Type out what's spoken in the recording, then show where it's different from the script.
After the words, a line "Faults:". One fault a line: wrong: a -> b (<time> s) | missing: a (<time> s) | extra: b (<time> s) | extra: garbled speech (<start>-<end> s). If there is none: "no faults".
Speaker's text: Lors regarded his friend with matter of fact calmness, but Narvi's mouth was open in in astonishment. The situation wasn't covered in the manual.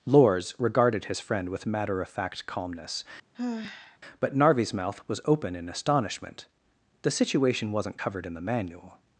Lors regarded his friend with matter of fact calmness, but Narvi's mouth was open in astonishment. The situation wasn't covered in the manual.
Faults:
missing: in (5.7 s)